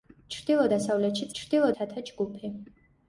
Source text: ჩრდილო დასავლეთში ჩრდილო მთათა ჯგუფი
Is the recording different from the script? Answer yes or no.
no